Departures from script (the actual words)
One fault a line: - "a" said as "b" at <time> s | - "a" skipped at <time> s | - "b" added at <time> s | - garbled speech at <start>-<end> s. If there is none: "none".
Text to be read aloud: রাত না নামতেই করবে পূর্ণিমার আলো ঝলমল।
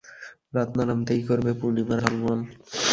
- "আলো" skipped at 2.0 s